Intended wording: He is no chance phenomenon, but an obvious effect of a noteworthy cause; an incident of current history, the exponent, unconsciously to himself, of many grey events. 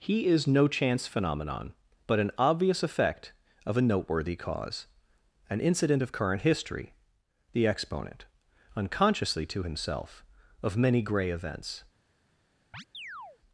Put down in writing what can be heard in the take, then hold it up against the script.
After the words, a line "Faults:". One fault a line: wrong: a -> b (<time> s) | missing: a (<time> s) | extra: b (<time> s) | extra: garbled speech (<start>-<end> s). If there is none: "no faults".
He is no chance phenomenon, but an obvious effect of a noteworthy cause; an incident of current history, the exponent, unconsciously to himself, of many grey events.
Faults:
no faults